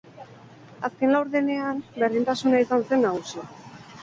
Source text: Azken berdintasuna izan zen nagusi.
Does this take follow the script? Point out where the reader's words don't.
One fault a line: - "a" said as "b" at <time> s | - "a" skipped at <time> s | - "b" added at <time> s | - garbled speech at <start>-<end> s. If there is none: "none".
- "laurdenean" added at 1.1 s